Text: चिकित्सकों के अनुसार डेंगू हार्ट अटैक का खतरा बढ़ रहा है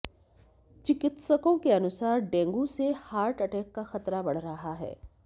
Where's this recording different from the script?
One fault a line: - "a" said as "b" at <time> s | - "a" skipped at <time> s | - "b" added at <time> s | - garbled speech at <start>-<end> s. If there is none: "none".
- "से" added at 2.7 s